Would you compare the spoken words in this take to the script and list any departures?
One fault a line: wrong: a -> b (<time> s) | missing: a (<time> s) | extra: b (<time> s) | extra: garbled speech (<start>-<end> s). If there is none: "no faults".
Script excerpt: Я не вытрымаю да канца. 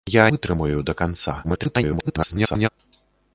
missing: не (0.2 s)
extra: garbled speech (1.4-2.7 s)